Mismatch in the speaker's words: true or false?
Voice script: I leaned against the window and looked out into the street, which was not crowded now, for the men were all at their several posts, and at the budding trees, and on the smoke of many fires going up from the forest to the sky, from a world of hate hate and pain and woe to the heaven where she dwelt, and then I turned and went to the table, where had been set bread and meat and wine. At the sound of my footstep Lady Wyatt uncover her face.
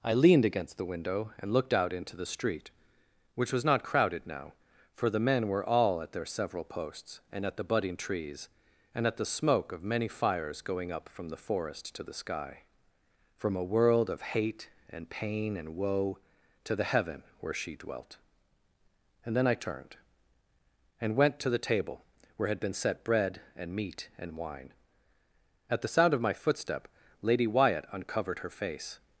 true